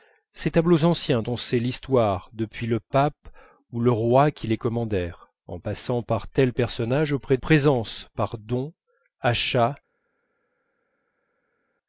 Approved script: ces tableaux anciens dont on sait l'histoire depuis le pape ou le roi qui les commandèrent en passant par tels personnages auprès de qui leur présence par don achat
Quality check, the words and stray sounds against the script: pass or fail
fail